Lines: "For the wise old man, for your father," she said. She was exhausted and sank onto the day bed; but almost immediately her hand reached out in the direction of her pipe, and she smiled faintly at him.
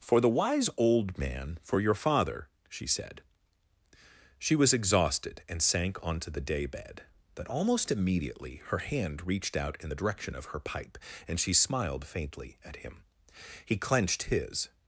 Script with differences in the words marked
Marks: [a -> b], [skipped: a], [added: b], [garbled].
"For the wise old man, for your father," she said. She was exhausted and sank onto the day bed; but almost immediately her hand reached out in the direction of her pipe, and she smiled faintly at him. [added: He clenched his]